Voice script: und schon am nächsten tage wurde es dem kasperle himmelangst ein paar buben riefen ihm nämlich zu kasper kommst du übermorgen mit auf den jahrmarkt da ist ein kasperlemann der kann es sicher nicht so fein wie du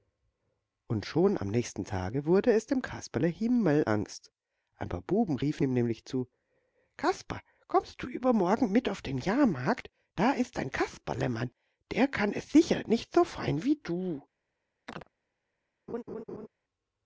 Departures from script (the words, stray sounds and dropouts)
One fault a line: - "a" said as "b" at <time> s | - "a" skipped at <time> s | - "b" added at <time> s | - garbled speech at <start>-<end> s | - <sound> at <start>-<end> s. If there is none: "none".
- chirp at 14.9-15.1 s
- laugh at 15.9-16.5 s